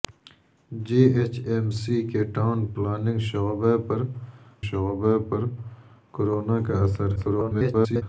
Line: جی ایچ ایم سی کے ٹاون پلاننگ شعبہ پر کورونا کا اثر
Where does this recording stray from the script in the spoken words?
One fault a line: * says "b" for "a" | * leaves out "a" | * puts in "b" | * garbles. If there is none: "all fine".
* puts in "شعبہ پر"
* garbles